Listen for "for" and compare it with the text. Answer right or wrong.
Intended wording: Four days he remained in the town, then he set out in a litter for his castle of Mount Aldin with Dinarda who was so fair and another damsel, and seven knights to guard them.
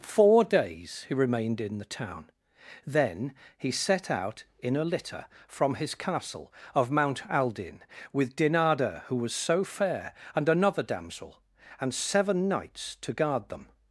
wrong